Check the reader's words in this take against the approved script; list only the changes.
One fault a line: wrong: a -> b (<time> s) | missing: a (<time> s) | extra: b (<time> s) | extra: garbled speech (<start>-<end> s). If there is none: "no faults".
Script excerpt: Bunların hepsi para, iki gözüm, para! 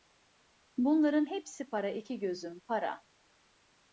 no faults